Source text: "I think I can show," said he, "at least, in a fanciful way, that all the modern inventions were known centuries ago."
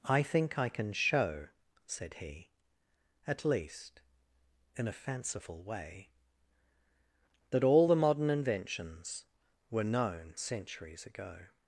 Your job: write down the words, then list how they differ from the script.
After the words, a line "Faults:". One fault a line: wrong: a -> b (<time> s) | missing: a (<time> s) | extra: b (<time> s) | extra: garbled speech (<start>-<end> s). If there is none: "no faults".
"I think I can show," said he, "at least, in a fanciful way, that all the modern inventions were known centuries ago."
Faults:
no faults